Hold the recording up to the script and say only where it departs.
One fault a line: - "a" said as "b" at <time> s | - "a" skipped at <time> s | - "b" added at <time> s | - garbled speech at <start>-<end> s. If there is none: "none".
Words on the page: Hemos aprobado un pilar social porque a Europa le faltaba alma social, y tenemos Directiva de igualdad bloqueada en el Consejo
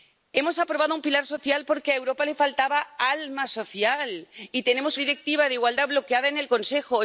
none